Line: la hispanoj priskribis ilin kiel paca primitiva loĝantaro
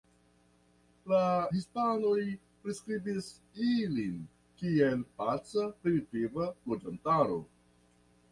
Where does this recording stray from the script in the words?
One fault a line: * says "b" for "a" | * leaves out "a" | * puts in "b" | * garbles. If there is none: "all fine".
all fine